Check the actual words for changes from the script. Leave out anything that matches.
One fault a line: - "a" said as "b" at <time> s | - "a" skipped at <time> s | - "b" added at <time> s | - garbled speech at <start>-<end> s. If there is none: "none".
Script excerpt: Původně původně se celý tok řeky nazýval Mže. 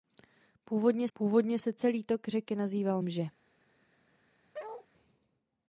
none